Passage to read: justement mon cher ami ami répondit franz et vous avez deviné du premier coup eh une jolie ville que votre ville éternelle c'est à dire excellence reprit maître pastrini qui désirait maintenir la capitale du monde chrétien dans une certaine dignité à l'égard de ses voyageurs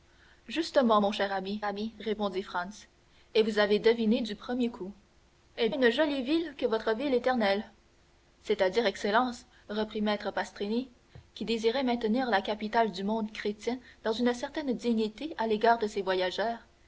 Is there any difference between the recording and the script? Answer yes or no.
no